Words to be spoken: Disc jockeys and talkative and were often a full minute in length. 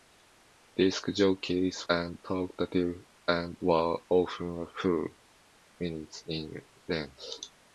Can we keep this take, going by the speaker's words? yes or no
yes